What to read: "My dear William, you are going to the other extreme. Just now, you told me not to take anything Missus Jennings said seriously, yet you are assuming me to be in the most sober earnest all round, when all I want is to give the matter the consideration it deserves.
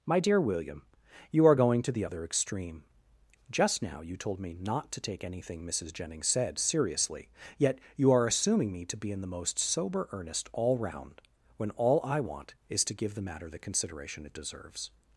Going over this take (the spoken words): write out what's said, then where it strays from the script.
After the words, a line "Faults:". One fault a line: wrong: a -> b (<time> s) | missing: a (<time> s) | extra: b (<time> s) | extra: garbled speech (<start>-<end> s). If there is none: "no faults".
"My dear William, you are going to the other extreme. Just now, you told me not to take anything Missus Jennings said seriously, yet you are assuming me to be in the most sober earnest all round, when all I want is to give the matter the consideration it deserves.
Faults:
no faults